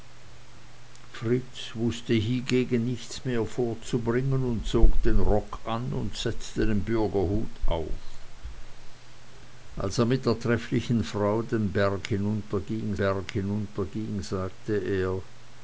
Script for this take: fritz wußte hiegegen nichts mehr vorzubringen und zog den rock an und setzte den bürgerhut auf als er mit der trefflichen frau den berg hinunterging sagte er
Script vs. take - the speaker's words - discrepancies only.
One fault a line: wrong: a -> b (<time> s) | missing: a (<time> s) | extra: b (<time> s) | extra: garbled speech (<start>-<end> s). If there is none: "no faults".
extra: berg hinunterging (12.9 s)